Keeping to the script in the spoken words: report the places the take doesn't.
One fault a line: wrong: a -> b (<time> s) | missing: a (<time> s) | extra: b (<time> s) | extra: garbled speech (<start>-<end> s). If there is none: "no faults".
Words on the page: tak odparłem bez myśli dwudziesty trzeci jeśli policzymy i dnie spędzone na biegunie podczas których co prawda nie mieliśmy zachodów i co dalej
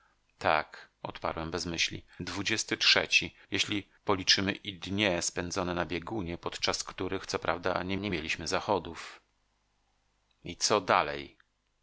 extra: nie (8.0 s)